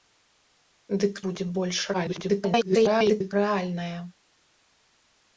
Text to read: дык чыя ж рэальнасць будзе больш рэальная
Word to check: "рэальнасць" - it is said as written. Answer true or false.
false